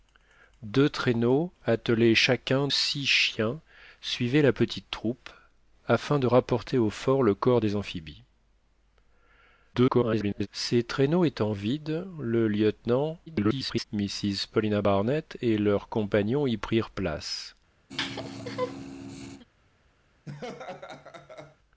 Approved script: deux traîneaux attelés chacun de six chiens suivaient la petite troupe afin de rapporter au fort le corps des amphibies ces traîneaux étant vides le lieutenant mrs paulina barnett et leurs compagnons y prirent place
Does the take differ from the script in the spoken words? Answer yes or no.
yes